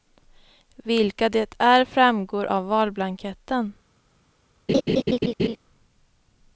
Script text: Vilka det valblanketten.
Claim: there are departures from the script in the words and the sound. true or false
true